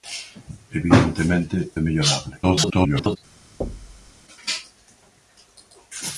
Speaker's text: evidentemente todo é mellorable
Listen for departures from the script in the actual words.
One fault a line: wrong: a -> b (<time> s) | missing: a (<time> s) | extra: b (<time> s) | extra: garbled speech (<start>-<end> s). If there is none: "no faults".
missing: todo (1.7 s)
extra: garbled speech (2.4-3.2 s)